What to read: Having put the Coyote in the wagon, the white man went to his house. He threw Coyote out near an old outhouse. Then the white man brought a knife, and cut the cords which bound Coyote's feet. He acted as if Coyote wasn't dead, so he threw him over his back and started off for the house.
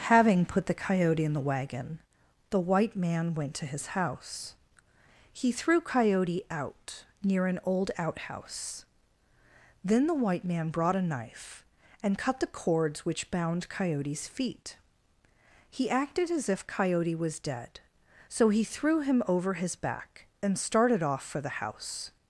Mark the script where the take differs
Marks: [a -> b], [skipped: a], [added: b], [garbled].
Having put the Coyote in the wagon, the white man went to his house. He threw Coyote out near an old outhouse. Then the white man brought a knife, and cut the cords which bound Coyote's feet. He acted as if Coyote [wasn't -> was] dead, so he threw him over his back and started off for the house.